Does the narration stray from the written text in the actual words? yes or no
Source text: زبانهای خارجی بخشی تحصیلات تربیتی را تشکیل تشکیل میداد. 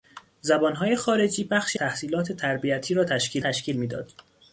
no